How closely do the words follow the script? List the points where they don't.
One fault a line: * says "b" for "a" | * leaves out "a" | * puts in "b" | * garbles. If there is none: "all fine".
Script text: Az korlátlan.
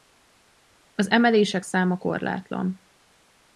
* puts in "emelések száma"